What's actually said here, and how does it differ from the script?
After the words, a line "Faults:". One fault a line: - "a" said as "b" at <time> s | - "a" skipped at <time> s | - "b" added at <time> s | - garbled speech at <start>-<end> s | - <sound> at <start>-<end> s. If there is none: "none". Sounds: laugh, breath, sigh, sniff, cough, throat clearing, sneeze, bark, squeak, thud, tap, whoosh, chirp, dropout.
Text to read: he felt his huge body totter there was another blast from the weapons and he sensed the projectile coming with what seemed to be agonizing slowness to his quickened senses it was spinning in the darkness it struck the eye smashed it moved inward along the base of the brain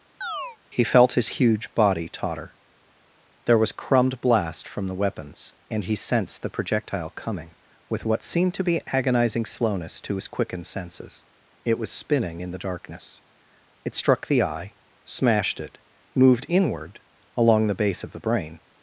he felt his huge body totter there was crumbed blast from the weapons and he sensed the projectile coming with what seemed to be agonizing slowness to his quickened senses it was spinning in the darkness it struck the eye smashed it moved inward along the base of the brain
Faults:
- chirp at 0.2-0.6 s
- "another" said as "crumbed" at 3.8 s